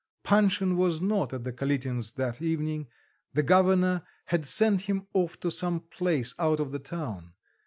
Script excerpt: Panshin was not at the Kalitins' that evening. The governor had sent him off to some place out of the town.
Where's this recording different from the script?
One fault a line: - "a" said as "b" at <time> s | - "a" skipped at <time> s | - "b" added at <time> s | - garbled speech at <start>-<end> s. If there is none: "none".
none